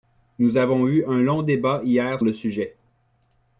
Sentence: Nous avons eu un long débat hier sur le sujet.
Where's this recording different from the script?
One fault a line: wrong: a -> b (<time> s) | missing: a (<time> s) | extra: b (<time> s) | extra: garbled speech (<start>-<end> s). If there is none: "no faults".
missing: sur (2.2 s)